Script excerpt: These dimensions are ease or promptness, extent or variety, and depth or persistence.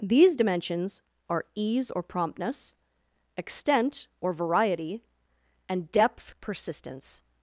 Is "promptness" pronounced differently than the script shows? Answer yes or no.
no